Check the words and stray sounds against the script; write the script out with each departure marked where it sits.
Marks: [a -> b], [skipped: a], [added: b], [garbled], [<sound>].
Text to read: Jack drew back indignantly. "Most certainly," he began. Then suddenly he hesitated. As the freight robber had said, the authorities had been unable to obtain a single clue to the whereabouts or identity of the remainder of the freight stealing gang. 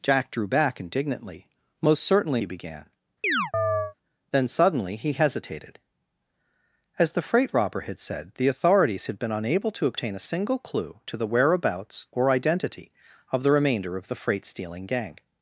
Jack drew back indignantly. "Most certainly," he began. [chirp] Then suddenly he hesitated. As the freight robber had said, the authorities had been unable to obtain a single clue to the whereabouts or identity of the remainder of the freight stealing gang.